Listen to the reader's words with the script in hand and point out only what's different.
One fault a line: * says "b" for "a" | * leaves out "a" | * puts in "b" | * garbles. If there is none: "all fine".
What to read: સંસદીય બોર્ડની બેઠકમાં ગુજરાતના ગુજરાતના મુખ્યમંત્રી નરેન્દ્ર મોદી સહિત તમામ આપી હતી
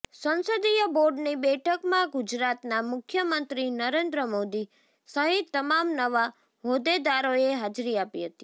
* leaves out "ગુજરાતના"
* puts in "નવા હોદ્દેદારોએ હાજરી"